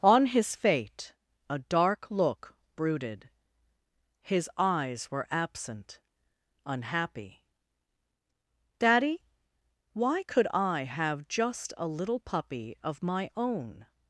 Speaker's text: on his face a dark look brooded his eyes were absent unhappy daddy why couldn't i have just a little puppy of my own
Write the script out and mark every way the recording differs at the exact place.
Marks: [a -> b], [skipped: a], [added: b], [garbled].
on his [face -> fate] a dark look brooded his eyes were absent unhappy daddy why [couldn't -> could] i have just a little puppy of my own